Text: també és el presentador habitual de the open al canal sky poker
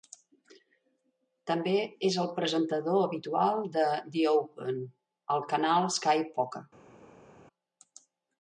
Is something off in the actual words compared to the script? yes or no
no